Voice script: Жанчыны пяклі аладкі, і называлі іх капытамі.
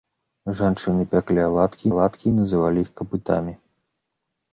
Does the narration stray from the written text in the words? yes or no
yes